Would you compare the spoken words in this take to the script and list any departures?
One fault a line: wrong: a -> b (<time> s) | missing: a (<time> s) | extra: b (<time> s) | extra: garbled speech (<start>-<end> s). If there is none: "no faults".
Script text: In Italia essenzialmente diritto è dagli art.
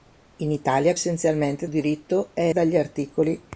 no faults